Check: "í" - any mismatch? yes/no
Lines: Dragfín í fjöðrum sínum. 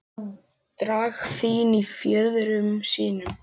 no